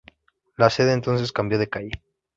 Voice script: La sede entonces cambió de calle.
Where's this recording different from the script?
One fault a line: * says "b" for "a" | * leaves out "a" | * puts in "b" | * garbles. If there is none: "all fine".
all fine